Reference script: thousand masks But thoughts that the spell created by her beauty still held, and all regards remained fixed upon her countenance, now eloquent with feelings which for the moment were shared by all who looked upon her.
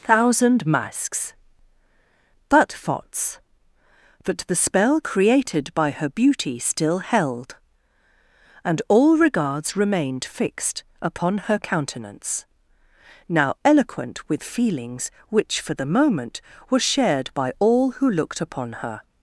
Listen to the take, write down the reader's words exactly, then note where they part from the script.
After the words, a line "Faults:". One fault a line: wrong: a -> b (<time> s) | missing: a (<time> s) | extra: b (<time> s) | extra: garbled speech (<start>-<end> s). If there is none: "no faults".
thousand masks But thoughts that the spell created by her beauty still held, and all regards remained fixed upon her countenance, now eloquent with feelings which for the moment were shared by all who looked upon her.
Faults:
no faults